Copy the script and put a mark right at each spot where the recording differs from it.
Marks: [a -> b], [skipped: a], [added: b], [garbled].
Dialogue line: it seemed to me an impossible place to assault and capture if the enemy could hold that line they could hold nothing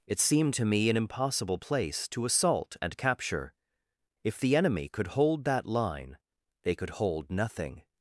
it seemed to me an impossible place to assault and capture if the enemy could hold that line they could hold nothing